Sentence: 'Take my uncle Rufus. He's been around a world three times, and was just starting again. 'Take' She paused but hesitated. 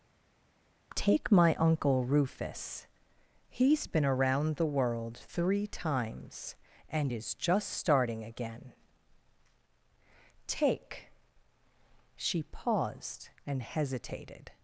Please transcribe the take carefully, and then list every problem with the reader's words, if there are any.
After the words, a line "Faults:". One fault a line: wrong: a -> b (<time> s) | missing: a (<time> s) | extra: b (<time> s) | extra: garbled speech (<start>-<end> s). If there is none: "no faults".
'Take my uncle Rufus. He's been around the world three times, and is just starting again. 'Take' She paused and hesitated.
Faults:
wrong: a -> the (4.6 s)
wrong: was -> is (7.1 s)
wrong: but -> and (13.5 s)